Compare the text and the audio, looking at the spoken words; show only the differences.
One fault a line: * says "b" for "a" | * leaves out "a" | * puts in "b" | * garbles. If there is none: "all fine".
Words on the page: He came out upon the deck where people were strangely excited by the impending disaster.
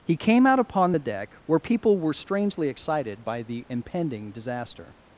all fine